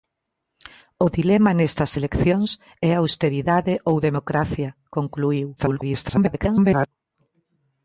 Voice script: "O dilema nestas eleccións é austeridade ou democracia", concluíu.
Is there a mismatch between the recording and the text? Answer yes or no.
yes